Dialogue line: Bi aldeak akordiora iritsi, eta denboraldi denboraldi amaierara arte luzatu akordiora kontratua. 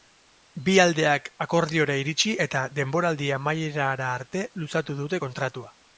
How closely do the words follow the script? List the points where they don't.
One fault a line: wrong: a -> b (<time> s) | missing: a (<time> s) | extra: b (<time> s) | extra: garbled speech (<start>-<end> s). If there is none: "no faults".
missing: denboraldi (3.3 s)
wrong: akordiora -> dute (5.0 s)